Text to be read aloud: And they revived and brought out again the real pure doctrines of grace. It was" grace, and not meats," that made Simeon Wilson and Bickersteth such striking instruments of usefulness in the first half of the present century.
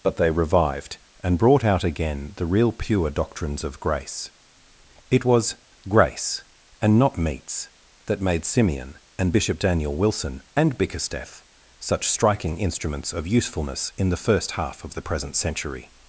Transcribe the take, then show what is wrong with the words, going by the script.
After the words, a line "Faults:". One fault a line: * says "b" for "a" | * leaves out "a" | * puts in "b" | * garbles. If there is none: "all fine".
But they revived and brought out again the real pure doctrines of grace. It was" grace, and not meats," that made Simeon and Bishop Daniel Wilson and Bickersteth such striking instruments of usefulness in the first half of the present century.
Faults:
* says "But" for "And"
* puts in "and Bishop Daniel"